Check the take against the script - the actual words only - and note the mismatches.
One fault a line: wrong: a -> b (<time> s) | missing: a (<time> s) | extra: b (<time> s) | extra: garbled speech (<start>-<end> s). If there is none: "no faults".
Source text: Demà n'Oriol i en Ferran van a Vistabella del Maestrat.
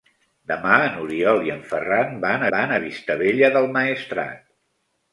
extra: van (2.5 s)